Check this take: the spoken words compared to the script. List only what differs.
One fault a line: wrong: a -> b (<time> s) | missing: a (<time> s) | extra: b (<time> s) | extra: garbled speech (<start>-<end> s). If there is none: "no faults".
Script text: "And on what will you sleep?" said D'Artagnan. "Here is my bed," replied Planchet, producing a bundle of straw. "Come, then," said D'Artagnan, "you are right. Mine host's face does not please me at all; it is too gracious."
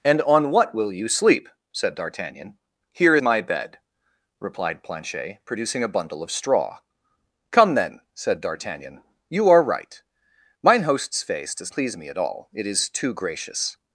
missing: is (3.2 s)
missing: not (11.7 s)